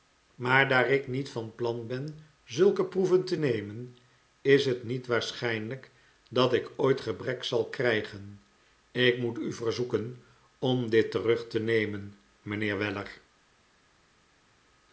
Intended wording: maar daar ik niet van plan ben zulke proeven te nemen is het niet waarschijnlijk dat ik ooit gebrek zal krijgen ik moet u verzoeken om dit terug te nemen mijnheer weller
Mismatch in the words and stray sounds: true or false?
false